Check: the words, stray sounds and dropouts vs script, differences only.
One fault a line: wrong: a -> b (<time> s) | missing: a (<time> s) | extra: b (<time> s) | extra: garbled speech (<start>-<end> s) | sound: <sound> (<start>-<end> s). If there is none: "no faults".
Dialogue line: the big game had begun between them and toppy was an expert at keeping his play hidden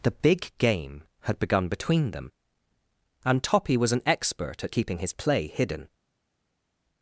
no faults